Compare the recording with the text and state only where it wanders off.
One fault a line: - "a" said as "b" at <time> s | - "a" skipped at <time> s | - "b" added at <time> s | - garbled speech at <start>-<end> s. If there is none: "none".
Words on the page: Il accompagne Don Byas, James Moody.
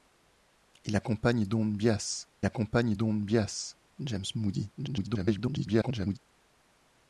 - "accompagne Don Byas" added at 2.4 s
- garbled speech at 4.8-6.2 s